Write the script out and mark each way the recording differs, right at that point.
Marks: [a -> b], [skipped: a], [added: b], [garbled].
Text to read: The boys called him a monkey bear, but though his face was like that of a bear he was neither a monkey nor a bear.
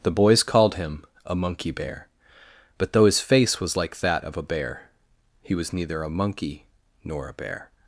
The boys called him a monkey bear, but though his face was like that of a bear he was neither a monkey nor a bear.